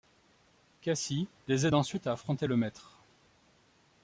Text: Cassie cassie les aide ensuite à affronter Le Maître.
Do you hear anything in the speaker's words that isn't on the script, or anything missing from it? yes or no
yes